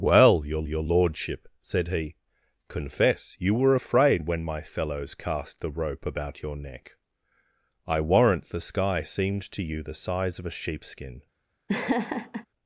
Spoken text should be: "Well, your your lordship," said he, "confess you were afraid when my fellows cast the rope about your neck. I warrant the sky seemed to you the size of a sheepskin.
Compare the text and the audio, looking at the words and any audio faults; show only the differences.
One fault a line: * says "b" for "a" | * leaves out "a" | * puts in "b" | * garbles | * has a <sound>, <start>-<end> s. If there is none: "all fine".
* has a laugh, 11.7-12.5 s